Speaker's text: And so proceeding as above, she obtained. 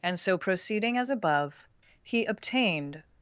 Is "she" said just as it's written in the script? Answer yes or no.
no